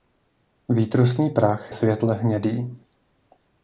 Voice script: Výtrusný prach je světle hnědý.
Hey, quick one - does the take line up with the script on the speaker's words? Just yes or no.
no